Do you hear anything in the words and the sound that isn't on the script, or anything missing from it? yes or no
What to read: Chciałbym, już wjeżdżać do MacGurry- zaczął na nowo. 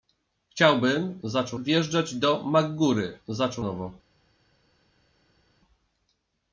yes